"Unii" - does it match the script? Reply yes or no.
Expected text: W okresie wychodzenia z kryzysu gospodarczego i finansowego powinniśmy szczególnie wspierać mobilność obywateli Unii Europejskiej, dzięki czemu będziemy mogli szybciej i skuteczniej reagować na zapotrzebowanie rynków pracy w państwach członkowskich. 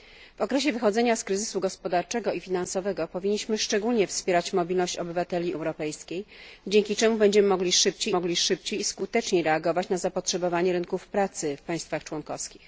no